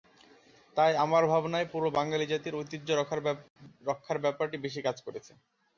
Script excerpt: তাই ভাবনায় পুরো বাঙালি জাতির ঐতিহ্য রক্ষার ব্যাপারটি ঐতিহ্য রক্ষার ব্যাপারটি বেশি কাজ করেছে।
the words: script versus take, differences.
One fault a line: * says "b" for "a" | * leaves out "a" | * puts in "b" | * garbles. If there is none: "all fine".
* puts in "আমার"
* leaves out "ঐতিহ্য রক্ষার ব্যাপারটি"